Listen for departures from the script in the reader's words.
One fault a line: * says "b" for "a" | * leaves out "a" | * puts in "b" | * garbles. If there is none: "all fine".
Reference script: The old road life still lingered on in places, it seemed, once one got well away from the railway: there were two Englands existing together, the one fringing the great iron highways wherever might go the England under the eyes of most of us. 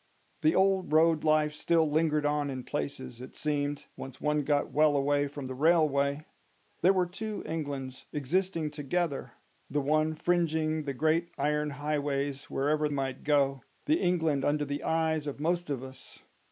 all fine